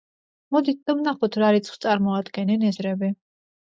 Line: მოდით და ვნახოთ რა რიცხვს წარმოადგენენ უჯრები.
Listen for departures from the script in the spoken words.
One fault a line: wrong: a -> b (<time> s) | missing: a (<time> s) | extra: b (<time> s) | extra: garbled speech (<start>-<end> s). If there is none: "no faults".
no faults